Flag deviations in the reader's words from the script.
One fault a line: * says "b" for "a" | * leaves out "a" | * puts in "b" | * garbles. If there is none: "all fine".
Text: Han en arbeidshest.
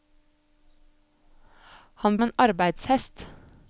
all fine